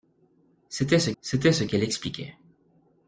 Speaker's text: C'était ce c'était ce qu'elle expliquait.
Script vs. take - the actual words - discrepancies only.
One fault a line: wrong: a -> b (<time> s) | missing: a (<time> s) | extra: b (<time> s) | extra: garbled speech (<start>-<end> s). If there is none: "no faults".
no faults